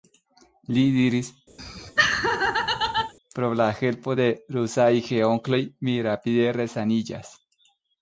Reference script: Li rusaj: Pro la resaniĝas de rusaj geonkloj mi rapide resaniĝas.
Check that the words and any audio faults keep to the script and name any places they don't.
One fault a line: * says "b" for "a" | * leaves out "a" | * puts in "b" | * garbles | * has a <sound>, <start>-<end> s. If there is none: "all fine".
* says "diris" for "rusaj"
* has a laugh, 1.6-3.1 s
* says "helpo" for "resaniĝas"